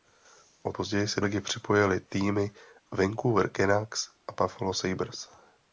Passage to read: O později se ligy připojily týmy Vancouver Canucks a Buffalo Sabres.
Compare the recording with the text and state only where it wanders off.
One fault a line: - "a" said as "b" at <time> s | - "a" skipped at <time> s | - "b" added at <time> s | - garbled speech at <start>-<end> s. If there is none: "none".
none